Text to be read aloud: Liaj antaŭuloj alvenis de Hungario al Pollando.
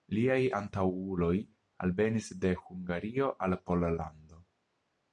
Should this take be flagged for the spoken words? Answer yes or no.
no